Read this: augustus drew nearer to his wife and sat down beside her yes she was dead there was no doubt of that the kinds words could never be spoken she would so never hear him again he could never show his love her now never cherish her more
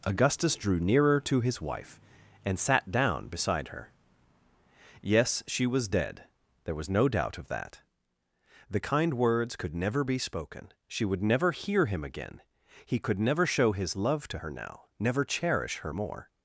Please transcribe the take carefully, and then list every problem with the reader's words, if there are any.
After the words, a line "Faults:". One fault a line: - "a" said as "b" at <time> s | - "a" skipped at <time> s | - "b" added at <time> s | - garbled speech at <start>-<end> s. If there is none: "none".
augustus drew nearer to his wife and sat down beside her yes she was dead there was no doubt of that the kind words could never be spoken she would never hear him again he could never show his love to her now never cherish her more
Faults:
- "kinds" said as "kind" at 8.8 s
- "so" skipped at 11.2 s
- "to" added at 14.3 s